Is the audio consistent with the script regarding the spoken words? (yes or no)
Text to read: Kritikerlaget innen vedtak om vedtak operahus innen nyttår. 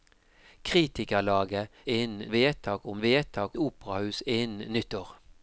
yes